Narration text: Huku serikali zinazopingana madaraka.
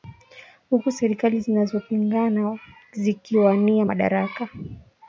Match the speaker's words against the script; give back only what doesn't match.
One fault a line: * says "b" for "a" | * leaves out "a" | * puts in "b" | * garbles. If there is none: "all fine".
* puts in "zikiwania"